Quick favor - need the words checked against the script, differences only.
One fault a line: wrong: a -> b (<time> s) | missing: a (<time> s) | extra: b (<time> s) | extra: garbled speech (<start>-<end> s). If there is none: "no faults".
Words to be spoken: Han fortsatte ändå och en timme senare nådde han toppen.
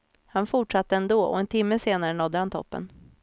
no faults